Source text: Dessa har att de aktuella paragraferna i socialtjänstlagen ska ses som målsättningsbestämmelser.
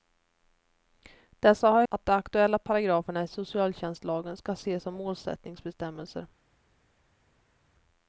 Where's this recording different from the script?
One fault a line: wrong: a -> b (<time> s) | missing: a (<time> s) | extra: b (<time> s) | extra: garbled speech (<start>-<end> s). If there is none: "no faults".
no faults